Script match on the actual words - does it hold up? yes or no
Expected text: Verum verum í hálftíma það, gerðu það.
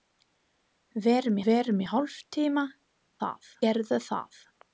yes